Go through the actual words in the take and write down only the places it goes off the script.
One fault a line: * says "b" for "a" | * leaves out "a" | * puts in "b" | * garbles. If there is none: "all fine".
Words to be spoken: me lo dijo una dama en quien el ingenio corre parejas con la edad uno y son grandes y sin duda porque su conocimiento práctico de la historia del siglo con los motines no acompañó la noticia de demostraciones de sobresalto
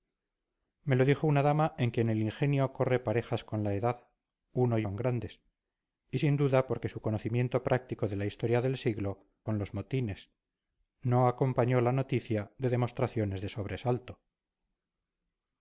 all fine